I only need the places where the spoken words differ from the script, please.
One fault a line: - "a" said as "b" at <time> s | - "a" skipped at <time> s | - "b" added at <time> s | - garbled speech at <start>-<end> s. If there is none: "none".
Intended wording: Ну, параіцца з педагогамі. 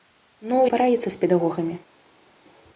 none